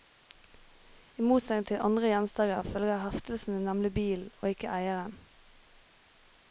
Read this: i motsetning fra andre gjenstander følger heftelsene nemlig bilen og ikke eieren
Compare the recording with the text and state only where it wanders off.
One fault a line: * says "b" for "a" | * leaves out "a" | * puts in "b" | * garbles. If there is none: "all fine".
* says "til" for "fra"